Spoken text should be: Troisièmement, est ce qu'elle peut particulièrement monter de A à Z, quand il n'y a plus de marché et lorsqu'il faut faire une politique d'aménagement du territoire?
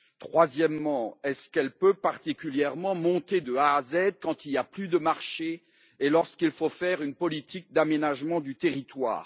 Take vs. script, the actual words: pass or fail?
pass